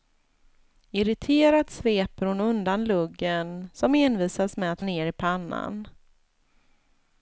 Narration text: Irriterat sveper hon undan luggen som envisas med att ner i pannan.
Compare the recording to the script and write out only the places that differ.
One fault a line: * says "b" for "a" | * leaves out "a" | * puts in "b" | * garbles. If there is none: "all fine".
all fine